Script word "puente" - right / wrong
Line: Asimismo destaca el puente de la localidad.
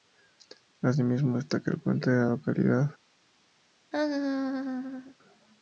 right